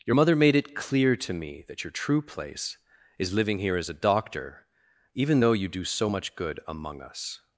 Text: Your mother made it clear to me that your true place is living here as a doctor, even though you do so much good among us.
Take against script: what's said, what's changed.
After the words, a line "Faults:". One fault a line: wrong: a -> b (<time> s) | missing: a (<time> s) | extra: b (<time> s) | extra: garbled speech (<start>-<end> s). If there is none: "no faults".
Your mother made it clear to me that your true place is living here as a doctor, even though you do so much good among us.
Faults:
no faults